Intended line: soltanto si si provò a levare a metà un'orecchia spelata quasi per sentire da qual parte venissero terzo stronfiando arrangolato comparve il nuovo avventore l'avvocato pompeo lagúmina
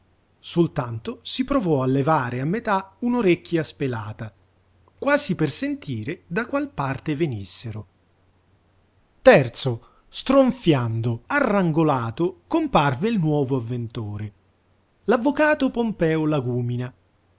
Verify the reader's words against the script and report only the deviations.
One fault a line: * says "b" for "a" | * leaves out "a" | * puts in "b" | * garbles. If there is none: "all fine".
* leaves out "si"